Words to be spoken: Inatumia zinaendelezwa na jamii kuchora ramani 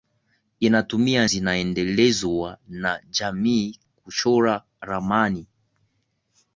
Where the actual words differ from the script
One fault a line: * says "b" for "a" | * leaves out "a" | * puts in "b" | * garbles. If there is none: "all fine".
all fine